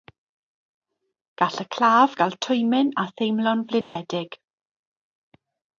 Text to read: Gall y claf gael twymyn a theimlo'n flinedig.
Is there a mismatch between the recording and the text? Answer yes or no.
no